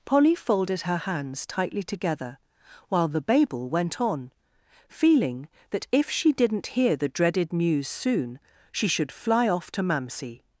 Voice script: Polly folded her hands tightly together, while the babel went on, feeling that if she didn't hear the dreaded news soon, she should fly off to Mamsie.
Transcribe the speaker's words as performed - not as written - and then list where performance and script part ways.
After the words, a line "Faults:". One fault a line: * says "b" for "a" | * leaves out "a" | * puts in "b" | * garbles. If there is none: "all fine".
Polly folded her hands tightly together, while the babel went on, feeling that if she didn't hear the dreaded news soon, she should fly off to Mamsie.
Faults:
all fine